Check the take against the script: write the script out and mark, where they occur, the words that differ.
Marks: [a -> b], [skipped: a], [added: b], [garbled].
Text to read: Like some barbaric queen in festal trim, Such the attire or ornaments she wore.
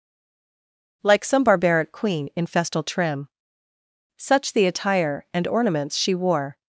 Like some barbaric queen in festal trim, Such the attire [or -> and] ornaments she wore.